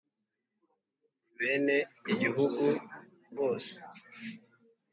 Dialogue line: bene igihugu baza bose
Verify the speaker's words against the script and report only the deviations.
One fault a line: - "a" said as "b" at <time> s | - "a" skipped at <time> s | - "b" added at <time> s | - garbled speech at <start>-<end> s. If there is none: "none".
- "baza" skipped at 2.6 s